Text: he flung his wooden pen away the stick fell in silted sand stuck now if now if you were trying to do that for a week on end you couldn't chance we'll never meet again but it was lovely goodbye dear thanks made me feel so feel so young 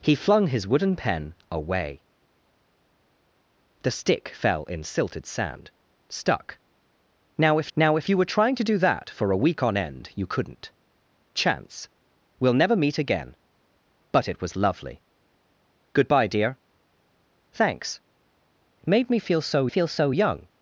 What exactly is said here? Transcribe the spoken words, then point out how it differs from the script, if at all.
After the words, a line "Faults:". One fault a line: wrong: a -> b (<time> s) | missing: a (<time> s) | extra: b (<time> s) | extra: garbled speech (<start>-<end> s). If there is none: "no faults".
he flung his wooden pen away the stick fell in silted sand stuck now if now if you were trying to do that for a week on end you couldn't chance we'll never meet again but it was lovely goodbye dear thanks made me feel so feel so young
Faults:
no faults